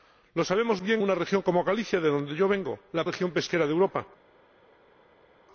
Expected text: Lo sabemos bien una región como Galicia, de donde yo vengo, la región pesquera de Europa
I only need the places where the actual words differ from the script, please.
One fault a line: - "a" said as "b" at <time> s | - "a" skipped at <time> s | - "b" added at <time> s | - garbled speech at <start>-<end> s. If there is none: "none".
none